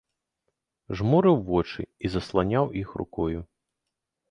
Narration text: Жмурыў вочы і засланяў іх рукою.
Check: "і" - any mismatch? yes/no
no